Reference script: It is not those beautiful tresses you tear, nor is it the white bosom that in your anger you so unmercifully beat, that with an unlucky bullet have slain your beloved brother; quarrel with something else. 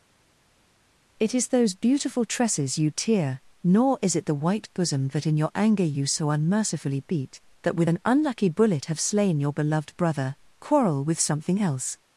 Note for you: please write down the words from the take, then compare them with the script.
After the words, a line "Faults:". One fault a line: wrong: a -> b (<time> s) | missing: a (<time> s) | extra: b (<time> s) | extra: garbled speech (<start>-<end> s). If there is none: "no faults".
It is those beautiful tresses you tear, nor is it the white bosom that in your anger you so unmercifully beat, that with an unlucky bullet have slain your beloved brother; quarrel with something else.
Faults:
missing: not (1.5 s)